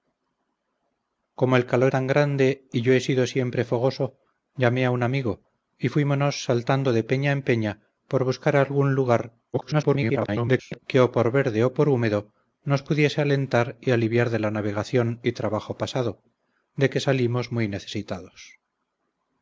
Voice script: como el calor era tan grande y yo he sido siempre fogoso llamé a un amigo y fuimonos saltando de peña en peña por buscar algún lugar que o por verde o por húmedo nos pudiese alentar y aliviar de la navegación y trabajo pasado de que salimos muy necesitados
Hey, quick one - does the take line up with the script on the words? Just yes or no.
no